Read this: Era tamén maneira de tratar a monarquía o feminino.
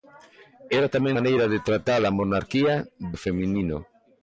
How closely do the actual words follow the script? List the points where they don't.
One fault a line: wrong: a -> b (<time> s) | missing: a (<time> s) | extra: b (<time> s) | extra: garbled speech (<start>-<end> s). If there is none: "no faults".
no faults